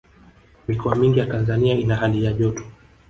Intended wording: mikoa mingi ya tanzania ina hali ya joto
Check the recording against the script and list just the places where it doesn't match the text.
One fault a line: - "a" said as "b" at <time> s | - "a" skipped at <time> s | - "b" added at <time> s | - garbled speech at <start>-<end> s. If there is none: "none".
none